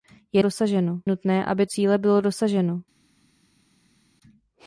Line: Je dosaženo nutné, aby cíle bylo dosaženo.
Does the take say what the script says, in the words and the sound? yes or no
yes